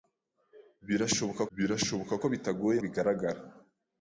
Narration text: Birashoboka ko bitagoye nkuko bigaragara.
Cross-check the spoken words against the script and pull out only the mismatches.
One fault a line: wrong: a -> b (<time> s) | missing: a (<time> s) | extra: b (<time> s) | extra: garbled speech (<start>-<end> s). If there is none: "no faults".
extra: birashoboka (1.6 s)
missing: nkuko (2.8 s)